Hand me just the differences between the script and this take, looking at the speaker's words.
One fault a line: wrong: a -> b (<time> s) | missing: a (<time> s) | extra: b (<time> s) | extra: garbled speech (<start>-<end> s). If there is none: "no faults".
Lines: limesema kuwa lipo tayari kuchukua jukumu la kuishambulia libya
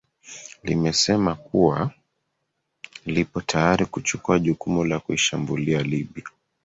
no faults